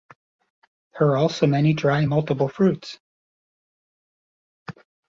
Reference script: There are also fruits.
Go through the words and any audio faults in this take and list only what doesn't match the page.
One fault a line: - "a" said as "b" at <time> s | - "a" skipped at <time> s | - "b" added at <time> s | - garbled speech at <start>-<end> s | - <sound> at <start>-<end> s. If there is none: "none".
- "many dry multiple" added at 1.4 s